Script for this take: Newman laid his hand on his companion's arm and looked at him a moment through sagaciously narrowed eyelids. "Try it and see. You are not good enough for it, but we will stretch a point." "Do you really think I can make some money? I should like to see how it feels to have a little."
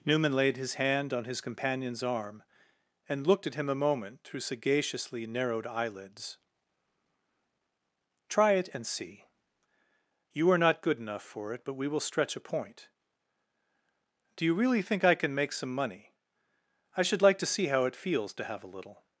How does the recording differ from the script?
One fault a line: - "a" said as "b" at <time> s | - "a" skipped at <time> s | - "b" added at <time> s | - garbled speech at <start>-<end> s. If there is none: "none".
none